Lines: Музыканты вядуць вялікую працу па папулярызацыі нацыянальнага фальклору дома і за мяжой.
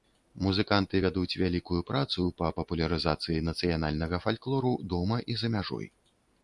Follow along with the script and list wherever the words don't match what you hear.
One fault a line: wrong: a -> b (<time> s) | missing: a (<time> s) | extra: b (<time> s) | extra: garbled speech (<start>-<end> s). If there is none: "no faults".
no faults